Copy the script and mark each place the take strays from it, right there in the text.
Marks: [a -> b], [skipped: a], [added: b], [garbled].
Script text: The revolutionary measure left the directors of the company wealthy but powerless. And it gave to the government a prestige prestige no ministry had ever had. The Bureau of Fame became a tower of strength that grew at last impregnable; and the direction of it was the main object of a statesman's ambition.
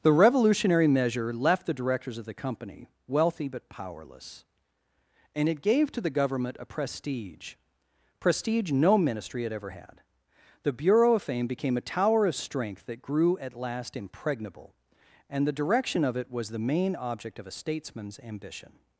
The revolutionary measure left the directors of the company wealthy but powerless. And it gave to the government a prestige prestige no ministry had ever had. The Bureau of Fame became a tower of strength that grew at last impregnable; and the direction of it was the main object of a statesman's ambition.